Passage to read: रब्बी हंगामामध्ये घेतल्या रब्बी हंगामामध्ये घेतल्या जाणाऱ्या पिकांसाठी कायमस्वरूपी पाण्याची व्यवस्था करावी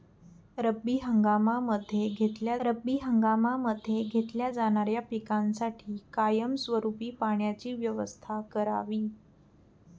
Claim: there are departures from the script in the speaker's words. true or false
false